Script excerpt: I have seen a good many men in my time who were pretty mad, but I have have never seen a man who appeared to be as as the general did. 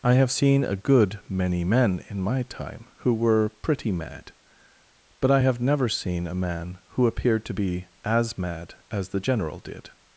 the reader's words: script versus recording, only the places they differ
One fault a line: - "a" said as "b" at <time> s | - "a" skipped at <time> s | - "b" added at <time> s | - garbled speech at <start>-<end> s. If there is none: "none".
- "have" skipped at 5.6 s
- "mad" added at 8.4 s